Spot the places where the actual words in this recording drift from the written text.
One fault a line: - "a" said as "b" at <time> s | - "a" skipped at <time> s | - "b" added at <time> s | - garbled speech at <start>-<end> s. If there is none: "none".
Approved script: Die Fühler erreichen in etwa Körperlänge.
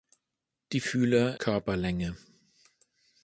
- "erreichen in etwa" skipped at 1.4 s